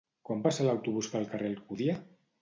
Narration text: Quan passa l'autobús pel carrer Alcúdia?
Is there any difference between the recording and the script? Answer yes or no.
no